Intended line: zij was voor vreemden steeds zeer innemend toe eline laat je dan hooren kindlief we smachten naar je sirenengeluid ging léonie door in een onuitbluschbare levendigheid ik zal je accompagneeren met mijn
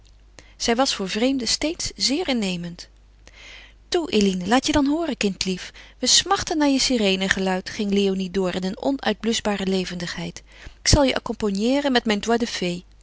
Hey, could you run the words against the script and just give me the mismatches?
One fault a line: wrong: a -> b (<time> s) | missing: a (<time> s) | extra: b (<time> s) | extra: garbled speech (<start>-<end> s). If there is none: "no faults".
missing: ik (10.4 s)